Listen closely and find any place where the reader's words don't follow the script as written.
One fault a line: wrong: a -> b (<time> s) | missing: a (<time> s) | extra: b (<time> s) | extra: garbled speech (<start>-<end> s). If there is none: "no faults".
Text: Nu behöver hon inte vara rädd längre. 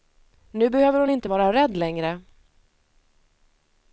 no faults